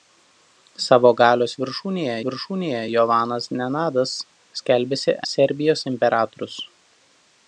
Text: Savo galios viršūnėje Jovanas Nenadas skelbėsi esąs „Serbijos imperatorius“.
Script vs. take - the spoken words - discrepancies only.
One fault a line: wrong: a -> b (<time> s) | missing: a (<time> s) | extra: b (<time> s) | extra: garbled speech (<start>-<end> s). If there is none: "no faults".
extra: viršūnėje (2.3 s)
missing: esąs (5.2 s)